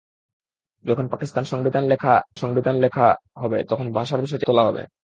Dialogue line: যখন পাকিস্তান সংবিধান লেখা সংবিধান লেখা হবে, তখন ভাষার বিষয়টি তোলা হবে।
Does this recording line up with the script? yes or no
yes